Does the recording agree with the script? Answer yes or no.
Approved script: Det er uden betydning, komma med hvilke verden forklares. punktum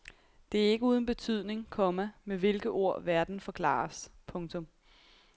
no